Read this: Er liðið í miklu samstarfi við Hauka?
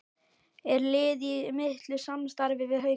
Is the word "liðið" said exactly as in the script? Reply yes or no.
yes